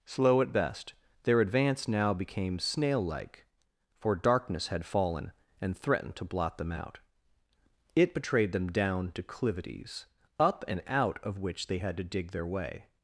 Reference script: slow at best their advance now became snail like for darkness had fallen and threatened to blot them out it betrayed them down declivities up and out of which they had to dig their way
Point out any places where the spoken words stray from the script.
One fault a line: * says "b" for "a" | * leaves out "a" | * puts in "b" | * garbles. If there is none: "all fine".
all fine